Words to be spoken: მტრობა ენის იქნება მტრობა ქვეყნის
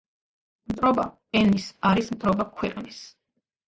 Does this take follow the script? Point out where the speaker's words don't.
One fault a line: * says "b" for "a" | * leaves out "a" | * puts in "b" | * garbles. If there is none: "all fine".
* says "არის" for "იქნება"